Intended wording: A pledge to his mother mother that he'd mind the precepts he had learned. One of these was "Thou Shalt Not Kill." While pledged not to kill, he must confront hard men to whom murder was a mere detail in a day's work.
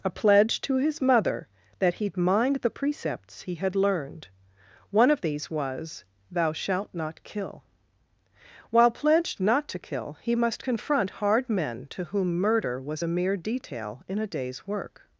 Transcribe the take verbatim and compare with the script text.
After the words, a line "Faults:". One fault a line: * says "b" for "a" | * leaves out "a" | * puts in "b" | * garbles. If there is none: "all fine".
A pledge to his mother that he'd mind the precepts he had learned. One of these was "Thou Shalt Not Kill." While pledged not to kill, he must confront hard men to whom murder was a mere detail in a day's work.
Faults:
* leaves out "mother"